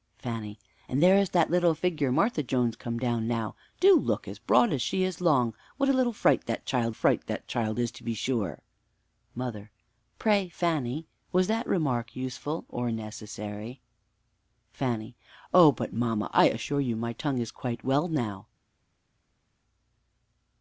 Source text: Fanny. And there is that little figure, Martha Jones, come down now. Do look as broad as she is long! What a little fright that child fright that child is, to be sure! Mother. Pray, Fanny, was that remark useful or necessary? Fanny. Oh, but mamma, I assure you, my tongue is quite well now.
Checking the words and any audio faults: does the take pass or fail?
pass